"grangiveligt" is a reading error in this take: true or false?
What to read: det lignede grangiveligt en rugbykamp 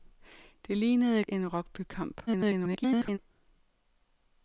true